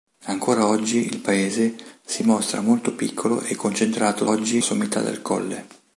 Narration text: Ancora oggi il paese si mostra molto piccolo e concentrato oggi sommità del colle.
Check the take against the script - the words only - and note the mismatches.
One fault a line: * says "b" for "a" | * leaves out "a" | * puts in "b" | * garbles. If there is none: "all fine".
all fine